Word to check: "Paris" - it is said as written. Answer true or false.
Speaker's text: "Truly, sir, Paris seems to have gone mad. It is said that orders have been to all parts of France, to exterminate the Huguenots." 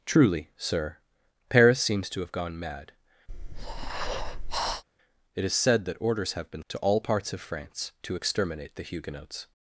true